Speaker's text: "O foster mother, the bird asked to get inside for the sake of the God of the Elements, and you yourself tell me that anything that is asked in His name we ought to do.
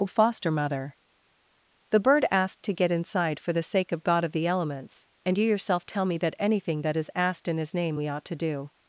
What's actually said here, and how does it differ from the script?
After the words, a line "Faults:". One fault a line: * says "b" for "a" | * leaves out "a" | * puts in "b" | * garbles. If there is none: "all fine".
"O foster mother, the bird asked to get inside for the sake of God of the Elements, and you yourself tell me that anything that is asked in His name we ought to do.
Faults:
* leaves out "the"